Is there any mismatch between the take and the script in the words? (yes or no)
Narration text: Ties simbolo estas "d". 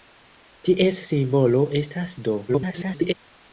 yes